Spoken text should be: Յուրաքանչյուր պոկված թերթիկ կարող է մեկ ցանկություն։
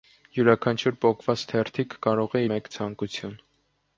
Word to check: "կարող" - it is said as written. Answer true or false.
true